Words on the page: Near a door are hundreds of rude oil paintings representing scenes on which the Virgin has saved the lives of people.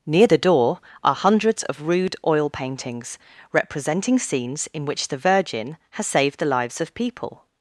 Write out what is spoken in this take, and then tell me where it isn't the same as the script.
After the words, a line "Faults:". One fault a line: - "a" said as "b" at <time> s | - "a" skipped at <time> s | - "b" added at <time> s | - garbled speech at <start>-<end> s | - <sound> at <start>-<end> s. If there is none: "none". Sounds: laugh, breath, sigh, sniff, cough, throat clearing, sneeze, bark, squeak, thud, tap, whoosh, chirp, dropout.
Near the door are hundreds of rude oil paintings representing scenes in which the Virgin has saved the lives of people.
Faults:
- "a" said as "the" at 0.2 s
- "on" said as "in" at 4.7 s